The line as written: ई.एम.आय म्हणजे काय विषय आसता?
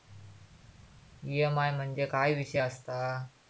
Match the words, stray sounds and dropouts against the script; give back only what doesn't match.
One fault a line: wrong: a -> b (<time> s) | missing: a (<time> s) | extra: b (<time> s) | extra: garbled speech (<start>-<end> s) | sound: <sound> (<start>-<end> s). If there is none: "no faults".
no faults